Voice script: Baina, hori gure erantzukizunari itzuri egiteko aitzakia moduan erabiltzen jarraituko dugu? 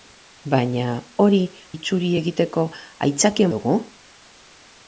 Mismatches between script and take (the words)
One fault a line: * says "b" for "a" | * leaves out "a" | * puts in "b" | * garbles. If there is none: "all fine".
* leaves out "gure erantzukizunari"
* leaves out "moduan erabiltzen jarraituko"